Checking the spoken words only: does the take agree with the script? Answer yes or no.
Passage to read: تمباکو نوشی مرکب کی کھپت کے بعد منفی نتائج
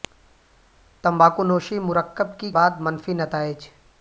no